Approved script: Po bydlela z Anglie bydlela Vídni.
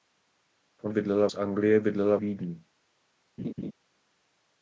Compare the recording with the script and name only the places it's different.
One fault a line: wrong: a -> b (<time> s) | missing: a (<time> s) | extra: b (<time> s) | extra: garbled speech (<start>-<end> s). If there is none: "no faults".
no faults